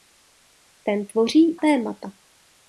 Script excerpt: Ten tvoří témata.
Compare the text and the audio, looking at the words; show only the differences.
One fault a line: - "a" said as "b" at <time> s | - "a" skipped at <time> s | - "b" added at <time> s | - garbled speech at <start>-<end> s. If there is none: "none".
none